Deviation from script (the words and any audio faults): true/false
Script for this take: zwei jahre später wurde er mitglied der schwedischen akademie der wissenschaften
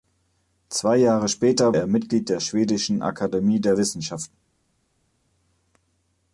true